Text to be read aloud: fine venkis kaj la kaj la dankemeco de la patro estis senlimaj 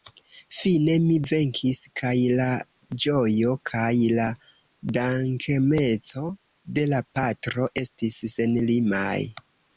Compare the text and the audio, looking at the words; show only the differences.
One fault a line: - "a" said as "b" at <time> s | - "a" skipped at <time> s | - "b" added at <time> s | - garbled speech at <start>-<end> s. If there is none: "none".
- "mi" added at 1.0 s
- "ĝojo" added at 3.0 s